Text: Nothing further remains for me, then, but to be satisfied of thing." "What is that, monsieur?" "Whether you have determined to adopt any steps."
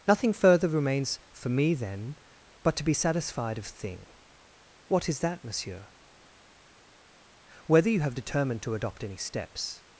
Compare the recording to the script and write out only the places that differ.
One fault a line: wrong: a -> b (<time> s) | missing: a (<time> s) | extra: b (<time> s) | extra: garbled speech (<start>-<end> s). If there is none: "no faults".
no faults